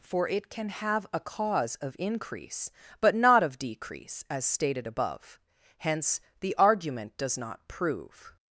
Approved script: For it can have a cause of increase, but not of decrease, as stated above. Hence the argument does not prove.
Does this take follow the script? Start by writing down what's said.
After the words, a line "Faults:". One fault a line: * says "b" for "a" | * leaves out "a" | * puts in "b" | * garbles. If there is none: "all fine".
For it can have a cause of increase, but not of decrease, as stated above. Hence the argument does not prove.
Faults:
all fine